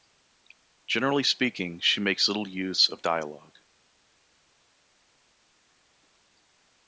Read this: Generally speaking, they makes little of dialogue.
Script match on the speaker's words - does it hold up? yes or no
no